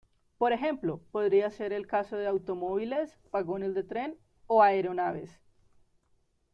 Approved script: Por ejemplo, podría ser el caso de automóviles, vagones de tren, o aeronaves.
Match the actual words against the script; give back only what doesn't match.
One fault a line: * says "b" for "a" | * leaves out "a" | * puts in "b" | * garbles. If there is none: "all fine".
all fine